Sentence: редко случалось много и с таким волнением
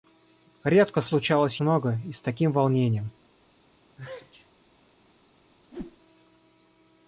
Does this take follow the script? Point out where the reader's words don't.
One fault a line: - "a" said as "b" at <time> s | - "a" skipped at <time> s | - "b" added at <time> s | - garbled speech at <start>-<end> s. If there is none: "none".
none